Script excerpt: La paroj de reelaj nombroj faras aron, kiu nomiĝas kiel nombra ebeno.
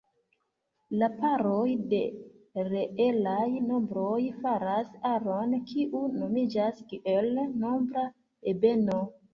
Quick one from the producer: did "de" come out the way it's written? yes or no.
yes